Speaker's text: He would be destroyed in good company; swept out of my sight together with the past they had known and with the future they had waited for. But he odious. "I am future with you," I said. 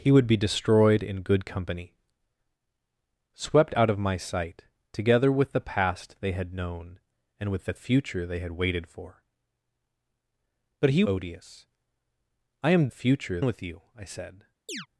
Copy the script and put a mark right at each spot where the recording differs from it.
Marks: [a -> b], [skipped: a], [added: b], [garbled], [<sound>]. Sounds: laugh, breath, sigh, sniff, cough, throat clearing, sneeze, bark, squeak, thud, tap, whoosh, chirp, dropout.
He would be destroyed in good company; swept out of my sight together with the past they had known and with the future they had waited for. But he odious. "I am future with you," I said. [chirp]